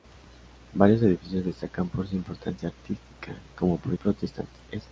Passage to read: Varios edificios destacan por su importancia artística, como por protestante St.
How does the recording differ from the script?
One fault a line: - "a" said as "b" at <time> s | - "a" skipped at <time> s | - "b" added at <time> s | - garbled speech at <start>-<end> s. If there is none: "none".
none